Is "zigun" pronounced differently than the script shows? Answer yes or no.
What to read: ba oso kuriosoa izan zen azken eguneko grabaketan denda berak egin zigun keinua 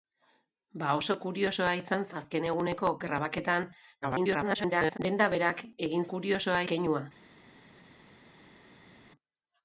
yes